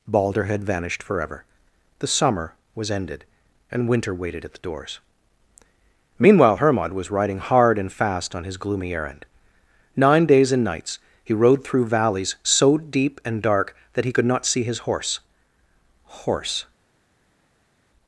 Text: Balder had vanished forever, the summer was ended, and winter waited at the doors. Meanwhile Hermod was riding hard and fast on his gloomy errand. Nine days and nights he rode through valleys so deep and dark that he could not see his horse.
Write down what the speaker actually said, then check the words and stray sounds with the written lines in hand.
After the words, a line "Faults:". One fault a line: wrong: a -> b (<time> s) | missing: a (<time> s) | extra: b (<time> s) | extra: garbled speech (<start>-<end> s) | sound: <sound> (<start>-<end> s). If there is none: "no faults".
Balder had vanished forever, the summer was ended, and winter waited at the doors. Meanwhile Hermod was riding hard and fast on his gloomy errand. Nine days and nights he rode through valleys so deep and dark that he could not see his horse horse.
Faults:
extra: horse (16.2 s)